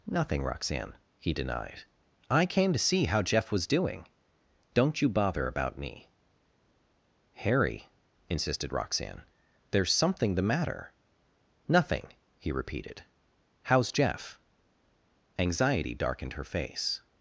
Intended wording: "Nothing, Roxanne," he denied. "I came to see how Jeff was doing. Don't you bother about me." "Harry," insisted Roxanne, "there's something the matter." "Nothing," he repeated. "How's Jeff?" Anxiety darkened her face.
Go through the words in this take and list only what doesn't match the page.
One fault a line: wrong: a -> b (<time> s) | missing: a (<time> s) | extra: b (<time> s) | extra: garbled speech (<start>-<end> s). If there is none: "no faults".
no faults